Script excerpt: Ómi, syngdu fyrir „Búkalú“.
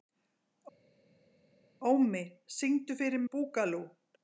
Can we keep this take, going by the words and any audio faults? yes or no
yes